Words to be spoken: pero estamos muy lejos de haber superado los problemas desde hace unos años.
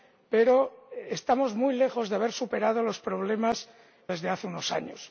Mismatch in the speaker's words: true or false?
false